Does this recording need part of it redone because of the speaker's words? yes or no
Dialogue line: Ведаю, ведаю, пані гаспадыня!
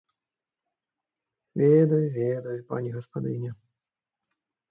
no